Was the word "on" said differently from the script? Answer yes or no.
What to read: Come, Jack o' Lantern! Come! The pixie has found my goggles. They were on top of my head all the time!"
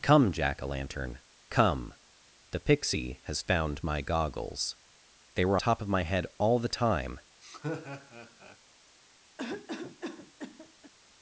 yes